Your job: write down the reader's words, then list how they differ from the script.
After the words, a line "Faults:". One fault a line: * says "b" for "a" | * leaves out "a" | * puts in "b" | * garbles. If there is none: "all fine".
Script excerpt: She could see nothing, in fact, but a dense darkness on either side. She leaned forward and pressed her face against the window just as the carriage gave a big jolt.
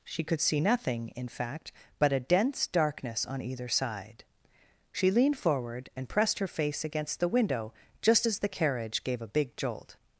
She could see nothing, in fact, but a dense darkness on either side. She leaned forward and pressed her face against the window just as the carriage gave a big jolt.
Faults:
all fine